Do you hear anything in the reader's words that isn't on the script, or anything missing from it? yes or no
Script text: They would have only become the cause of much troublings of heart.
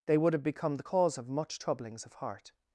yes